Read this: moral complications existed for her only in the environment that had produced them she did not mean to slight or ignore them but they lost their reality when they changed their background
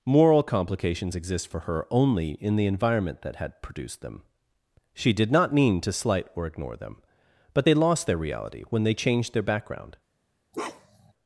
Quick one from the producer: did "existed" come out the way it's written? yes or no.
no